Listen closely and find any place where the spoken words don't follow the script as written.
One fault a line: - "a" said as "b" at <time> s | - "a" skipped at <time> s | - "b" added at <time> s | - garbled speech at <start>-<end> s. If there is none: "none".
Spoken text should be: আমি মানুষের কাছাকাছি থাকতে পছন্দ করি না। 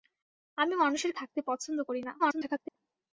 - "কাছাকাছি" skipped at 1.1 s
- garbled speech at 2.2-2.8 s